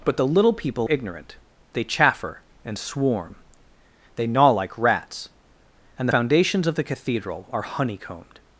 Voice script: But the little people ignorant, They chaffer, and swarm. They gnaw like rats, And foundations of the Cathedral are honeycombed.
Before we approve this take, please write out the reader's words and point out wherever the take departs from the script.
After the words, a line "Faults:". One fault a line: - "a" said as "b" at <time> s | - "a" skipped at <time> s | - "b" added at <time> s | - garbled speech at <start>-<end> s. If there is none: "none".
But the little people ignorant, They chaffer, and swarm. They gnaw like rats, And foundations of the Cathedral are honeycombed.
Faults:
none